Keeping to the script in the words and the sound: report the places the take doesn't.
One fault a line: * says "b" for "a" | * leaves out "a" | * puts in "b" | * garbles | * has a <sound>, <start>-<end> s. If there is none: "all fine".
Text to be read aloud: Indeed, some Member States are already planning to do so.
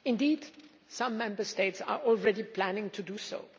all fine